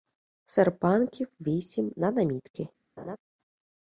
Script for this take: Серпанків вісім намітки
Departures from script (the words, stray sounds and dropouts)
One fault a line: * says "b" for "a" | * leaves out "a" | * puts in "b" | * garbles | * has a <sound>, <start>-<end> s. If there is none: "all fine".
* puts in "на"
* has a laugh, 3.0-3.2 s